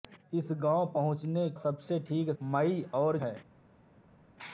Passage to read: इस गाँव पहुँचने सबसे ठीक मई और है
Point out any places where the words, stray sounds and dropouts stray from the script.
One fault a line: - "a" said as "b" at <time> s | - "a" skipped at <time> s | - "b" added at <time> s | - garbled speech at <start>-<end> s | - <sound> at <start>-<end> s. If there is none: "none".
none